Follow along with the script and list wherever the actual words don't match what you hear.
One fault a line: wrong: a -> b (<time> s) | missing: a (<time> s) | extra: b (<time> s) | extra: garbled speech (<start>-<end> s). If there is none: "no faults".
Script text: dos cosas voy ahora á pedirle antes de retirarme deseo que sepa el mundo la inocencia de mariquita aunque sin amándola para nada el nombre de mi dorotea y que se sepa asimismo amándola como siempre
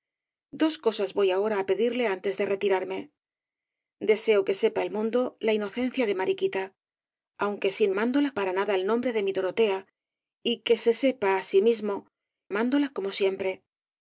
no faults